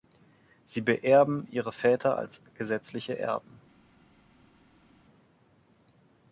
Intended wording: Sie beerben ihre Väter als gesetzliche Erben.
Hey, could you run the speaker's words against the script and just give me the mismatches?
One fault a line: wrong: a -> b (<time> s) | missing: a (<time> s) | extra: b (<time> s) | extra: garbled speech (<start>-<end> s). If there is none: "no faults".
no faults